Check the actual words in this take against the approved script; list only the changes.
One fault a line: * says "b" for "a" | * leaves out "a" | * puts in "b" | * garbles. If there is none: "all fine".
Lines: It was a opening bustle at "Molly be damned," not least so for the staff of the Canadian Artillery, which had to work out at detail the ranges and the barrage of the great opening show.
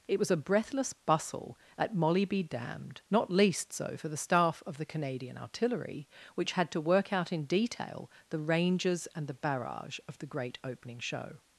* says "breathless" for "opening"
* says "in" for "at"